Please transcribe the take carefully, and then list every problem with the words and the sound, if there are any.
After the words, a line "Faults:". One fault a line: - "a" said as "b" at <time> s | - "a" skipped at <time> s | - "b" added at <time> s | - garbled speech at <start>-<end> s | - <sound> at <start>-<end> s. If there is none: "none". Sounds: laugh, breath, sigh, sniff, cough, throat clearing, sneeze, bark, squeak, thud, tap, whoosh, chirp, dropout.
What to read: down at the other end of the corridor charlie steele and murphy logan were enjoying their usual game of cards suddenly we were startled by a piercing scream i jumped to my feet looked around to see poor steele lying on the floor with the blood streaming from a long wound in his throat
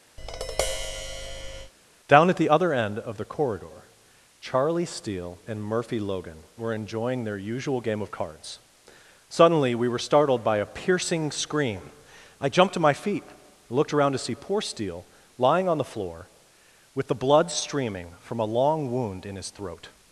down at the other end of the corridor charlie steele and murphy logan were enjoying their usual game of cards suddenly we were startled by a piercing scream i jumped to my feet looked around to see poor steele lying on the floor with the blood streaming from a long wound in his throat
Faults:
- tap at 0.2-1.7 s